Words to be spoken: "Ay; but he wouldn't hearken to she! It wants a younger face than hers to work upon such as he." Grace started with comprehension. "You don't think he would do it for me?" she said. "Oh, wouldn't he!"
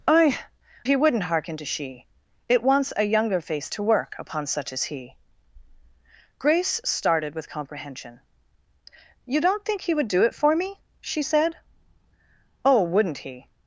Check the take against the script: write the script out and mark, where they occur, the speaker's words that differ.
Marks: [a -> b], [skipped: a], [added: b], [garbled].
"Ay; [skipped: but] he wouldn't hearken to she! It wants a younger face [skipped: than hers] to work upon such as he." Grace started with comprehension. "You don't think he would do it for me?" she said. "Oh, wouldn't he!"